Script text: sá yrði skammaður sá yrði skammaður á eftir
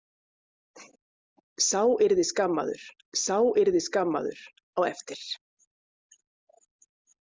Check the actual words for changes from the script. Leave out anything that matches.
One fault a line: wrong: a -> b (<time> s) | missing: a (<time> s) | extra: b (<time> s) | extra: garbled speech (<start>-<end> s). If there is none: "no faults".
no faults